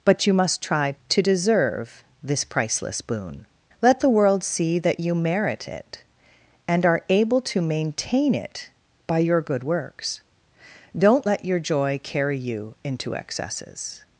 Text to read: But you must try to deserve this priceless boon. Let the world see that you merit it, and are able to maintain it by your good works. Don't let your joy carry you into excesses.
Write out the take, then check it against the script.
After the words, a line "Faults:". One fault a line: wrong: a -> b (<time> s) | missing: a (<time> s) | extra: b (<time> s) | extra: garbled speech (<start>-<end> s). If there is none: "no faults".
But you must try to deserve this priceless boon. Let the world see that you merit it, and are able to maintain it by your good works. Don't let your joy carry you into excesses.
Faults:
no faults